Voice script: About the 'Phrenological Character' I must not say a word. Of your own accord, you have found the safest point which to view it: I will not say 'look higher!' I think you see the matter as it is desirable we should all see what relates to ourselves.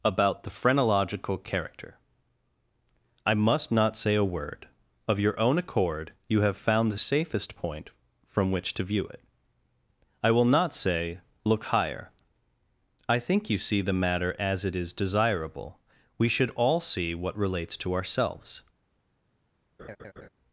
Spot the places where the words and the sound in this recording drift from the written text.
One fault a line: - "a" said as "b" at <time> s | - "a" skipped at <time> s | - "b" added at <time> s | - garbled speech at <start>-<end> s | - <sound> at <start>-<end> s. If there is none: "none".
- "from" added at 8.3 s
- laugh at 19.8-20.3 s